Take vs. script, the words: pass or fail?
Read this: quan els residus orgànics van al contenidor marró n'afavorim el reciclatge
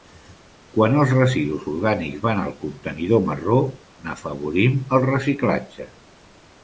pass